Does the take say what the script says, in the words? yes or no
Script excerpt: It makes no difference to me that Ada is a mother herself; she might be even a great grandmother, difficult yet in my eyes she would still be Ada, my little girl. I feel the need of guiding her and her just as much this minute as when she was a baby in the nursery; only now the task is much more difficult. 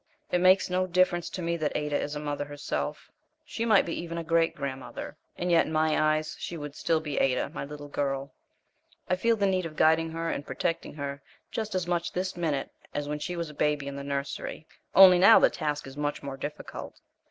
no